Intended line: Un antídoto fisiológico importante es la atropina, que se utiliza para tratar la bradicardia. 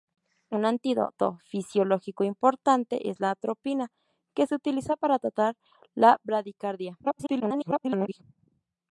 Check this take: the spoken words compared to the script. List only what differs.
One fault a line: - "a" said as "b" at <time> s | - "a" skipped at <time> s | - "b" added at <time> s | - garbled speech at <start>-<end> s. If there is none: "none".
- garbled speech at 7.0-8.2 s